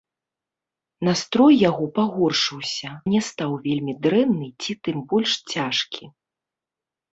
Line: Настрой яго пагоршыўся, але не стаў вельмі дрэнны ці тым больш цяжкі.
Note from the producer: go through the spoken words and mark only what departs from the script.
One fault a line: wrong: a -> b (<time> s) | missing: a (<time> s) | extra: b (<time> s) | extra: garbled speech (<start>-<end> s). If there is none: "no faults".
missing: але (2.9 s)